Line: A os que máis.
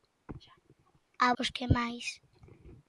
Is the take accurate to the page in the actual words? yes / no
yes